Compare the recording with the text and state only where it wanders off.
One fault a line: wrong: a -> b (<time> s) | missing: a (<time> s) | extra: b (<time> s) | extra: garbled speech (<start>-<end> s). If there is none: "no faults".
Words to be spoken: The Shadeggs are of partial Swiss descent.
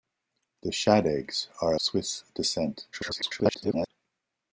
missing: of partial (1.8 s)
extra: garbled speech (2.9-3.9 s)